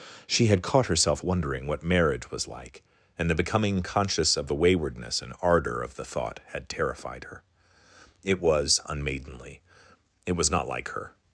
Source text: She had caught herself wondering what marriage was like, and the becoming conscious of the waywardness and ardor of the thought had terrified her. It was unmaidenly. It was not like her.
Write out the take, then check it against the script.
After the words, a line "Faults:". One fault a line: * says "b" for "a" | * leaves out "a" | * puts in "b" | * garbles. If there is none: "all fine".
She had caught herself wondering what marriage was like, and the becoming conscious of the waywardness and ardor of the thought had terrified her. It was unmaidenly. It was not like her.
Faults:
all fine